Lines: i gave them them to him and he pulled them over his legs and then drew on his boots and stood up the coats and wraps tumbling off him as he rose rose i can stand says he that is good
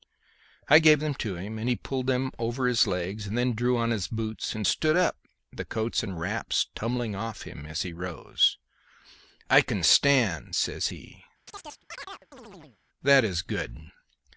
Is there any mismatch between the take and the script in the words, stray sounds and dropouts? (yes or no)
yes